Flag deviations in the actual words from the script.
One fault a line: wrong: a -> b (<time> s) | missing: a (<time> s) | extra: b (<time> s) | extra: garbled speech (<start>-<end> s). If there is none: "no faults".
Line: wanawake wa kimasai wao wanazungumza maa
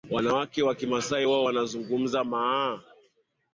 no faults